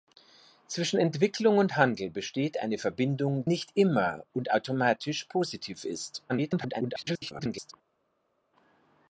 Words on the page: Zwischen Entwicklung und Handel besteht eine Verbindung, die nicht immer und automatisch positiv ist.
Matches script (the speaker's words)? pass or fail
fail